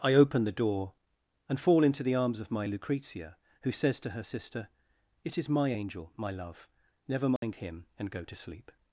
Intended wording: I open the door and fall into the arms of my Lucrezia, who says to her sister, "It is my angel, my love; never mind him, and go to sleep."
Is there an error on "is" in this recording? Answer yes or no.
no